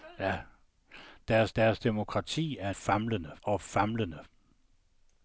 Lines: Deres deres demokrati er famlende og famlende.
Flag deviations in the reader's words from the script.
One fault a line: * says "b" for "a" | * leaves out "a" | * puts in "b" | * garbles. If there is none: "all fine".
all fine